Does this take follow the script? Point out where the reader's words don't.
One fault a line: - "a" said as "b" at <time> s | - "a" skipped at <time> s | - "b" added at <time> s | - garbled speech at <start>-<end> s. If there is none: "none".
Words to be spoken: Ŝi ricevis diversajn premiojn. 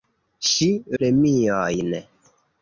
- "ricevis diversajn" skipped at 0.7 s